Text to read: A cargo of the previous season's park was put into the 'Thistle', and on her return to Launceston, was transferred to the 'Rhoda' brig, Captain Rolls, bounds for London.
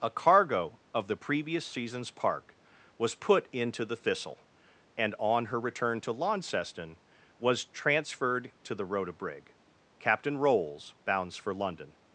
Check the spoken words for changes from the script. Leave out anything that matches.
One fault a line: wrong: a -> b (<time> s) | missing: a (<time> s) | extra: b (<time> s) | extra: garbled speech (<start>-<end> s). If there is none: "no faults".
no faults